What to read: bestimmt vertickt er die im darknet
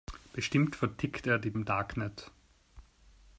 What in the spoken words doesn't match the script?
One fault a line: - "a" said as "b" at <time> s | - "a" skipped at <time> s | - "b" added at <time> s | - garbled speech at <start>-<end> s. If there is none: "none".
none